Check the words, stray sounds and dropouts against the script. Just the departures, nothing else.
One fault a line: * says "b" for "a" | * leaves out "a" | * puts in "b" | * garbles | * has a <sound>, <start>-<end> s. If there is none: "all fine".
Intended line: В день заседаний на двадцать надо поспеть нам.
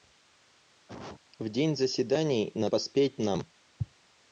* has a cough, 0.9-1.2 s
* leaves out "двадцать надо"